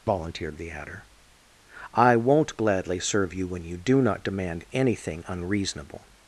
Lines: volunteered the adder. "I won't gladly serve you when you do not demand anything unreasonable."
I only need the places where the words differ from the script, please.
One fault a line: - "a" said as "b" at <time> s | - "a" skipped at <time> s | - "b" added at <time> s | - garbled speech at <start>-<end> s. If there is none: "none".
none